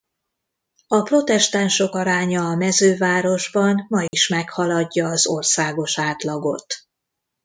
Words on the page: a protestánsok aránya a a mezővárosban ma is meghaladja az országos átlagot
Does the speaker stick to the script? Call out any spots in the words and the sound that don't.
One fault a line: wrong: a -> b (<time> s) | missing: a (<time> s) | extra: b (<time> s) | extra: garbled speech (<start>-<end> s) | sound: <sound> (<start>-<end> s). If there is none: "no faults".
missing: a (2.6 s)
sound: dropout (4.1-4.1 s)